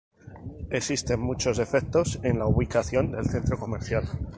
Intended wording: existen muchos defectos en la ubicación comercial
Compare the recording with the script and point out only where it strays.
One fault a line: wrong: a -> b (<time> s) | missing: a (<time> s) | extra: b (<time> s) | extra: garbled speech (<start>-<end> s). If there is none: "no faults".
extra: del centro (3.1 s)